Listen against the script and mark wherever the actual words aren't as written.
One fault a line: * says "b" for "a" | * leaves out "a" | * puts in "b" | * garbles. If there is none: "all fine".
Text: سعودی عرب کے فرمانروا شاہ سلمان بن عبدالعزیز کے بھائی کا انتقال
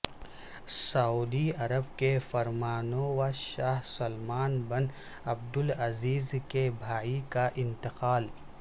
all fine